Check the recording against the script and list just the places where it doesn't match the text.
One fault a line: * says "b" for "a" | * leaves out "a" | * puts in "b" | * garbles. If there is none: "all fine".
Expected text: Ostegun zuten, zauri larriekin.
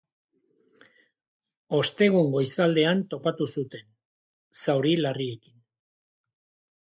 * puts in "goizaldean topatu"